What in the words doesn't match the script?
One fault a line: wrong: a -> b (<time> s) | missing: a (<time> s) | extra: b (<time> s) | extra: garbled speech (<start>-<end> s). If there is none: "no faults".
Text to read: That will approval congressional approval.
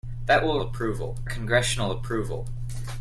no faults